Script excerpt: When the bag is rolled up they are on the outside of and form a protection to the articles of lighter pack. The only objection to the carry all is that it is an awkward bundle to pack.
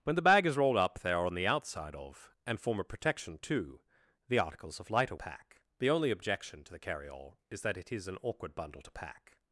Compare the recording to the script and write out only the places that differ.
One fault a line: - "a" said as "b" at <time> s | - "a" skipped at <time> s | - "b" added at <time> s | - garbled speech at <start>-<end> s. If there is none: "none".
none